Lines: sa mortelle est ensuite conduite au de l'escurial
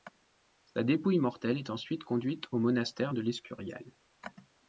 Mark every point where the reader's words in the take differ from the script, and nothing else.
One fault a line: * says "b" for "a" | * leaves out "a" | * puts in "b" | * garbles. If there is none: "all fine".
* puts in "dépouille"
* puts in "monastère"